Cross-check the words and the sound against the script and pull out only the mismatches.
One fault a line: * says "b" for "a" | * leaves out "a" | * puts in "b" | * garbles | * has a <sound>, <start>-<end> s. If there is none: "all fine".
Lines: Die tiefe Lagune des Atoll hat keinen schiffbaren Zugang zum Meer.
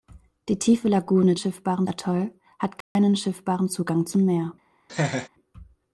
* says "schiffbaren" for "des"
* has a dropout, 2.8-3.0 s
* has a laugh, 4.9-5.3 s